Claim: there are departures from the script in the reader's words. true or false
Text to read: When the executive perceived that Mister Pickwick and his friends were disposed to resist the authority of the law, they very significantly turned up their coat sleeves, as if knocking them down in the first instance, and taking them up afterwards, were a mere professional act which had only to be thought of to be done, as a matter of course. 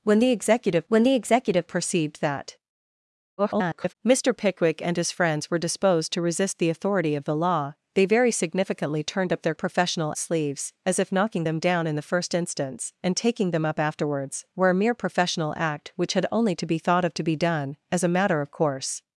true